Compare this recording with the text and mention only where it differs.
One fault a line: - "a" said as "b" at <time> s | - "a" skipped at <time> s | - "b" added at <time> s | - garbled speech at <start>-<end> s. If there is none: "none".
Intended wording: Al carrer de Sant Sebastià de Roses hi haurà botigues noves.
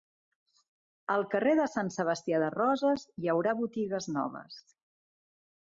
none